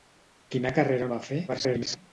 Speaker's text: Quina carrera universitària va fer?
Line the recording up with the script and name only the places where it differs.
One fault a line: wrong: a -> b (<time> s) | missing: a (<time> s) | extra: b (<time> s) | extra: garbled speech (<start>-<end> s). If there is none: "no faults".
missing: universitària (1.1 s)
extra: garbled speech (1.5-2.0 s)